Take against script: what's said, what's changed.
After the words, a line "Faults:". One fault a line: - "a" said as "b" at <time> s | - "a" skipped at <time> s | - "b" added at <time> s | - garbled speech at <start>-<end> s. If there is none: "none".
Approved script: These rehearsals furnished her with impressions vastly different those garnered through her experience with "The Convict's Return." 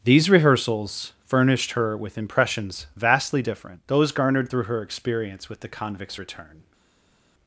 These rehearsals furnished her with impressions vastly different those garnered through her experience with "The Convict's Return."
Faults:
none